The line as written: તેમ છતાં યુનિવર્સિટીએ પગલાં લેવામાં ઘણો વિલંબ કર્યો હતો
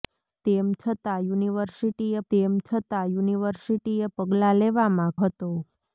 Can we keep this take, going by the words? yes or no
no